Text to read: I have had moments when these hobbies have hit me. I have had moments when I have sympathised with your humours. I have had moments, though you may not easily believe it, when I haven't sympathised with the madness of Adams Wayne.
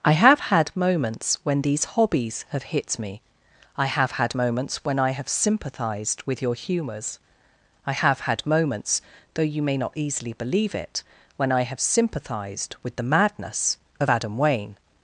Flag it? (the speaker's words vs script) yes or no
yes